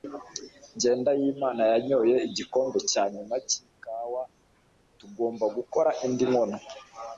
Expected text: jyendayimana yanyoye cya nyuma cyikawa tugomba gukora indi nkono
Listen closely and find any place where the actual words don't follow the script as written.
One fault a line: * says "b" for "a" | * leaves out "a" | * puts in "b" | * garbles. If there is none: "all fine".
* puts in "igikombe"